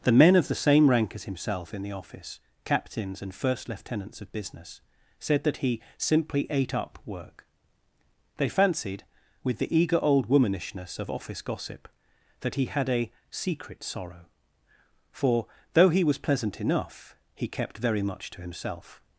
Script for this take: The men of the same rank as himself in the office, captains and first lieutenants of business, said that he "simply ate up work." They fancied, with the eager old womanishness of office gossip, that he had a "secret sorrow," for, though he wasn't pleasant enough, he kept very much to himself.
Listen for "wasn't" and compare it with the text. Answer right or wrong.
wrong